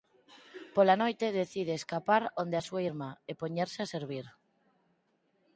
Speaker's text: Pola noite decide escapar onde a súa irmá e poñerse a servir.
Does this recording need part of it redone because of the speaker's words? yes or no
no